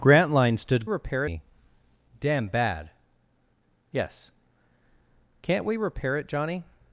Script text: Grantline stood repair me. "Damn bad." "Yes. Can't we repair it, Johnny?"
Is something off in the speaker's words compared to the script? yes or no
no